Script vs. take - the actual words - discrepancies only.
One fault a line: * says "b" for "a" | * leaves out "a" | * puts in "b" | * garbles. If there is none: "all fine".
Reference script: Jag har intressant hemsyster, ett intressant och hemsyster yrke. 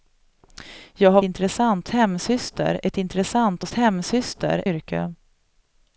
all fine